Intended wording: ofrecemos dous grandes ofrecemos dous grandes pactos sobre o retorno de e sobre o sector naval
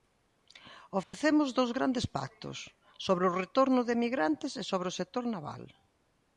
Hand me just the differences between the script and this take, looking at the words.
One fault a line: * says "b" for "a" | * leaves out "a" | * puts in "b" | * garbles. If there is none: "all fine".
* leaves out "ofrecemos dous grandes"
* puts in "emigrantes"